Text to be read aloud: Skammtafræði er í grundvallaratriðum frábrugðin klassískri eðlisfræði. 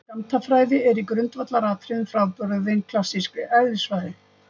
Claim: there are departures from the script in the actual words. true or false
false